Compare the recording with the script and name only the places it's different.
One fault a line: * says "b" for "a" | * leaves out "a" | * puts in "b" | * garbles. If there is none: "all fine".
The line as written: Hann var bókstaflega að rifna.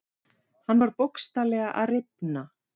all fine